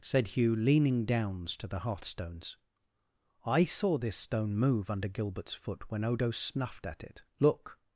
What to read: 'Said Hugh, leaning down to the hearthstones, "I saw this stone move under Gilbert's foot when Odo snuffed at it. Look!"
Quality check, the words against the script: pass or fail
fail